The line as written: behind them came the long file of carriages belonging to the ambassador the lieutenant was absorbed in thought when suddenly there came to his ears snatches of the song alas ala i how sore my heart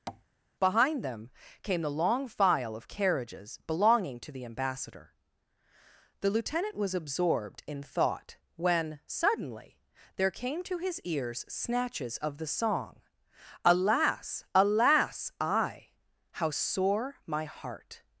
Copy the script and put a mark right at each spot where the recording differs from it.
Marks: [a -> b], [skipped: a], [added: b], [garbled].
behind them came the long file of carriages belonging to the ambassador the lieutenant was absorbed in thought when suddenly there came to his ears snatches of the song alas [ala -> alas] i how sore my heart